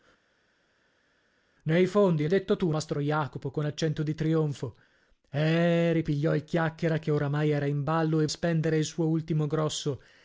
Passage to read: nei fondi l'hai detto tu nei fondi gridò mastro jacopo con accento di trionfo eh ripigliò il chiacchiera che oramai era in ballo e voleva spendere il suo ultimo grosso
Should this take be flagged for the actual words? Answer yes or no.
yes